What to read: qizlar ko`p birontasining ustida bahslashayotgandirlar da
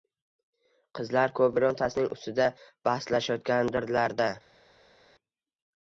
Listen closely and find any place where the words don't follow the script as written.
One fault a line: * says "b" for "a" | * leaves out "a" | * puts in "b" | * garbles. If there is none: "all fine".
all fine